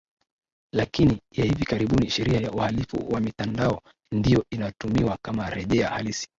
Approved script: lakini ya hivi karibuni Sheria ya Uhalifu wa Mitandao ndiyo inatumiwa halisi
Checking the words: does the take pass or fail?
fail